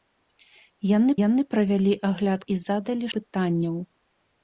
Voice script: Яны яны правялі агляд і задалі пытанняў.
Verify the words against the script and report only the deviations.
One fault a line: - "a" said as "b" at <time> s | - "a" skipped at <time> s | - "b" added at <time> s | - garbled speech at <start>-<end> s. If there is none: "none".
none